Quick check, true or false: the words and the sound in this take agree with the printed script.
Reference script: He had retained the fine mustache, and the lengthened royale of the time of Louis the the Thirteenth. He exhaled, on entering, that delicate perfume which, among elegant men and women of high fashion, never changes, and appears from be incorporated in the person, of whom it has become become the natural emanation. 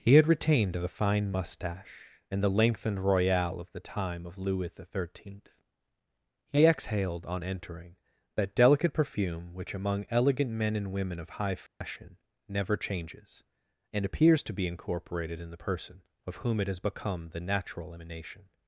false